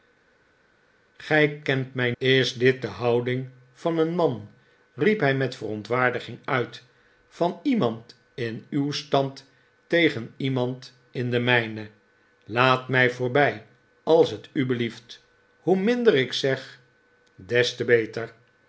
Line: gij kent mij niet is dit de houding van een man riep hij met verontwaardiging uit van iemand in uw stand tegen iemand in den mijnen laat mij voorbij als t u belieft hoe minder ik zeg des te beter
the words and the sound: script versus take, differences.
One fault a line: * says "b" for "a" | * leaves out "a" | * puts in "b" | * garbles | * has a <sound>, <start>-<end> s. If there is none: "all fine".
* leaves out "niet"